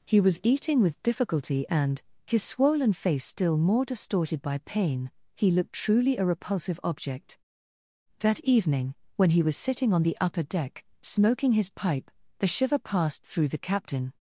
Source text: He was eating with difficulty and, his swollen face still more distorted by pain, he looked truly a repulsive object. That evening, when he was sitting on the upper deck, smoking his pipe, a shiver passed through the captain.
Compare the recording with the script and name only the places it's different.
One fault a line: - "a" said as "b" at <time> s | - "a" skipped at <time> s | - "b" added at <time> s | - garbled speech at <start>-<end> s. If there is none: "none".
- "a" said as "the" at 12.4 s